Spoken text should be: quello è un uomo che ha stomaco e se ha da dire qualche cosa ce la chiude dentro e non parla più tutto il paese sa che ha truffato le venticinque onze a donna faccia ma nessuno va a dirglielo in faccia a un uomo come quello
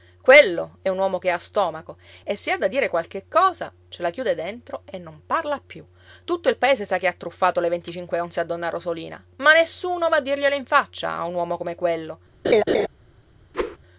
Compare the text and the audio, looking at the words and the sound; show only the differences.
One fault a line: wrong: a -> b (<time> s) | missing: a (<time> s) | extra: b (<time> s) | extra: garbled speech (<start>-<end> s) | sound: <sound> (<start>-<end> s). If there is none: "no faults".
wrong: faccia -> rosolina (8.7 s)
sound: laugh (12.4-12.9 s)
sound: whoosh (13.5-13.8 s)